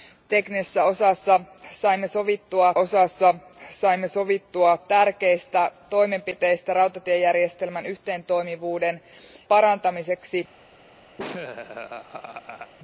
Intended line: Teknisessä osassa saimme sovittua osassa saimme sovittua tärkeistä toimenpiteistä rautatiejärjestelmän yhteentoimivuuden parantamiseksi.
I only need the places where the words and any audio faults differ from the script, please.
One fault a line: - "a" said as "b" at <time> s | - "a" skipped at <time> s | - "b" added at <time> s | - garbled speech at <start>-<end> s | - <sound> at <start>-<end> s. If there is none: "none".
- laugh at 11.2-12.7 s